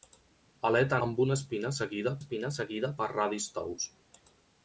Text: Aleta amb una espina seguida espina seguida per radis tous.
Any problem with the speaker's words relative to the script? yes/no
no